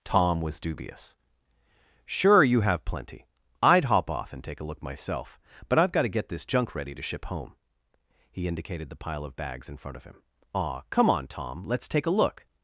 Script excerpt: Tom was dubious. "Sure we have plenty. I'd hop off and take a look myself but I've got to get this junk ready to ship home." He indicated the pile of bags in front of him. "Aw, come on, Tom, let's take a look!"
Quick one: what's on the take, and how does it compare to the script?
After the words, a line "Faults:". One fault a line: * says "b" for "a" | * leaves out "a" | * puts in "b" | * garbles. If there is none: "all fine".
Tom was dubious. "Sure you have plenty. I'd hop off and take a look myself but I've got to get this junk ready to ship home." He indicated the pile of bags in front of him. "Aw, come on, Tom, let's take a look!"
Faults:
* says "you" for "we"